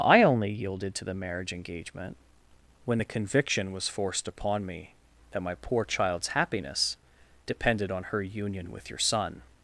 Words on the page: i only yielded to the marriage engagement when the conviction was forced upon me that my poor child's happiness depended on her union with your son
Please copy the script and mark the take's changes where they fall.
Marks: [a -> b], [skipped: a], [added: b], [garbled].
i only yielded to the marriage engagement when the conviction was forced upon me that my poor child's happiness depended on her union with your son